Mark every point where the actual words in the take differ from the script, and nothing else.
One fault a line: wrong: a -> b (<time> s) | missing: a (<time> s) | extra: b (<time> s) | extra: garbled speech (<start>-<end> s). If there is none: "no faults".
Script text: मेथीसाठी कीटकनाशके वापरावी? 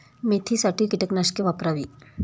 no faults